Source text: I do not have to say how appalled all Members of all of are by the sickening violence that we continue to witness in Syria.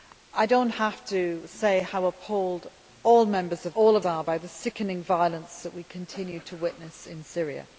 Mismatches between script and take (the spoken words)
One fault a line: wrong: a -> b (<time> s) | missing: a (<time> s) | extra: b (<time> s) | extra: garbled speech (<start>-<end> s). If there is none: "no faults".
no faults